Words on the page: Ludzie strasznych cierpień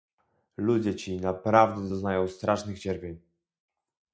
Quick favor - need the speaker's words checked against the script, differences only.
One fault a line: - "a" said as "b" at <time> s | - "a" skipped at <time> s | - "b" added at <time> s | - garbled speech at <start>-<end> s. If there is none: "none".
- "ci naprawdę doznają" added at 0.9 s